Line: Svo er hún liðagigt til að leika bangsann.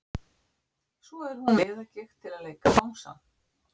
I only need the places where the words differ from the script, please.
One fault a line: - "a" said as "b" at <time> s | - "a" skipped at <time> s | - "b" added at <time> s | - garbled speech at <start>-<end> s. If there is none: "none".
none